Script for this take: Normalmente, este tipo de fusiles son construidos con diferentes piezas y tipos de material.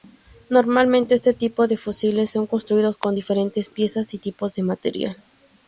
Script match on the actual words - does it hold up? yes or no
yes